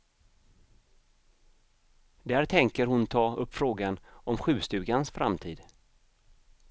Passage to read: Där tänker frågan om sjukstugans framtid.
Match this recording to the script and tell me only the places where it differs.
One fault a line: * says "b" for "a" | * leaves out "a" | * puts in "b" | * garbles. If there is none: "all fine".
* puts in "hon ta upp"